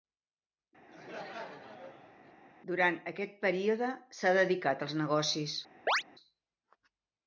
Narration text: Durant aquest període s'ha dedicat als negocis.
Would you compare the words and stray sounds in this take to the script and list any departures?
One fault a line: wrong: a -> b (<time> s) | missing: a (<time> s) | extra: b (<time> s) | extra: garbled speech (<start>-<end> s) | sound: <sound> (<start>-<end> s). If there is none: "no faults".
sound: laugh (0.9-2.3 s)
sound: chirp (5.9-6.0 s)